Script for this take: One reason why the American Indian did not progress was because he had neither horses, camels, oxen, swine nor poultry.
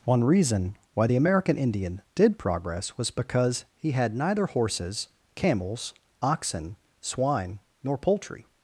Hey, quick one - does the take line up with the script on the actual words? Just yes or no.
no